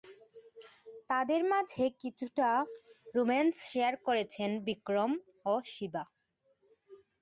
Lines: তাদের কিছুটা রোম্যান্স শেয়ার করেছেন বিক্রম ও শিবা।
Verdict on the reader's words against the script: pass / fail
fail